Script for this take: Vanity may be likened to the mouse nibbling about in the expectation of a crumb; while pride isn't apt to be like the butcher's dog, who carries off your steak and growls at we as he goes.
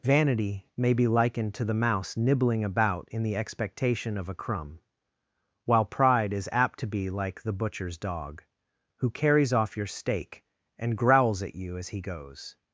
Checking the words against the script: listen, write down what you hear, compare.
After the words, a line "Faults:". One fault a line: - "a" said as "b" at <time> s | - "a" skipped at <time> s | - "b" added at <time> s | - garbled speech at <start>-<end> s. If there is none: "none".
Vanity may be likened to the mouse nibbling about in the expectation of a crumb; while pride is apt to be like the butcher's dog, who carries off your steak and growls at you as he goes.
Faults:
- "isn't" said as "is" at 6.3 s
- "we" said as "you" at 11.5 s